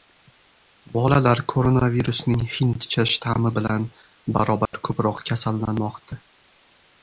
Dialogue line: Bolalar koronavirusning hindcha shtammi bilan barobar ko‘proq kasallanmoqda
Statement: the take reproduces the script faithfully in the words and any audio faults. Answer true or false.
false